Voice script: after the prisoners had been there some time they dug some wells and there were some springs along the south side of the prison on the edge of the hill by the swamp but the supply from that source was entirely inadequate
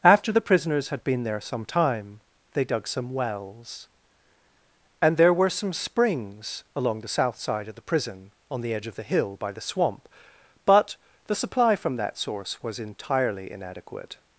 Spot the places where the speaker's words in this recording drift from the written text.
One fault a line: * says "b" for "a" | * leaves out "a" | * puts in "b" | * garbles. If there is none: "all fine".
all fine